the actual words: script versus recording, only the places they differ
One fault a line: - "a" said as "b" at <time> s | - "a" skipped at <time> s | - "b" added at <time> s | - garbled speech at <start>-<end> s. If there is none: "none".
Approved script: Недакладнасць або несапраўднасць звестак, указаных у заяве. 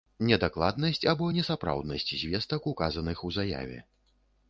none